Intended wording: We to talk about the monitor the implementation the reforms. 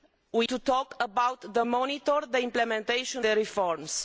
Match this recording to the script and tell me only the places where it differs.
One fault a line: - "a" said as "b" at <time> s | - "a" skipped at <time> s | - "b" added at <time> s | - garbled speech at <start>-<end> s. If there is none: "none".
none